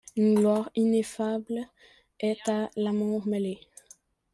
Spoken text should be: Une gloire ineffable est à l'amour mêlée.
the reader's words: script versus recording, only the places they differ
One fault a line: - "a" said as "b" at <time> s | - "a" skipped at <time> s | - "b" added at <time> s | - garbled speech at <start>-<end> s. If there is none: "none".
none